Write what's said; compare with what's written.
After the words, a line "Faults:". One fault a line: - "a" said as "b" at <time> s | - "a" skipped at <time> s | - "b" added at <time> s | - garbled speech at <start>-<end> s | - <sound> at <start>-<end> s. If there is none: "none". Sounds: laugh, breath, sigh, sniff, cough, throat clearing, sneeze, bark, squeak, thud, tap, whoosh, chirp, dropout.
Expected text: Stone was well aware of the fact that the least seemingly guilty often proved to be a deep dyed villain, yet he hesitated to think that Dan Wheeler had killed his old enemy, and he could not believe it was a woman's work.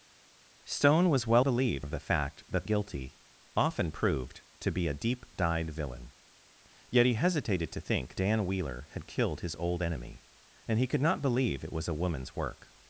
Stone was well believe of the fact that guilty often proved to be a deep dyed villain, yet he hesitated to think Dan Wheeler had killed his old enemy, and he could not believe it was a woman's work.
Faults:
- "aware" said as "believe" at 1.4 s
- "the least seemingly" skipped at 2.6 s
- "that" skipped at 8.2 s